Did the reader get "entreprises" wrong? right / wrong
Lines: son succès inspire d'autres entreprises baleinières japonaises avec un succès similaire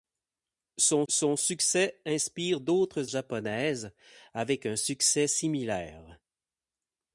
wrong